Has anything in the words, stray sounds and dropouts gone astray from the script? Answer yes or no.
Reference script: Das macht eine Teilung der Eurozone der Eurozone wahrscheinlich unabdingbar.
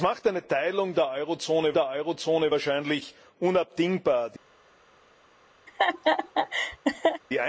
yes